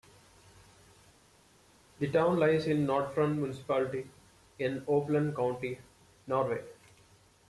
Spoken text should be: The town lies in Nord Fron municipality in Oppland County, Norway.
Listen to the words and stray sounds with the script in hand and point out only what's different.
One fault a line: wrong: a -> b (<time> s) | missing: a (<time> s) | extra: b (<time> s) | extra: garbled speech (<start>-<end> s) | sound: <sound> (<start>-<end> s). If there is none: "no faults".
no faults